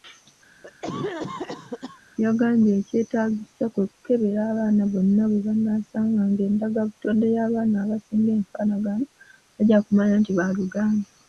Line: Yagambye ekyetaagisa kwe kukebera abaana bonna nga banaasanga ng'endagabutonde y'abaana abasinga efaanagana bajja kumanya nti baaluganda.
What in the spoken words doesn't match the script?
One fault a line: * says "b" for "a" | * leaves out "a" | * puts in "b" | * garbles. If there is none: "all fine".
* says "bwe" for "nga"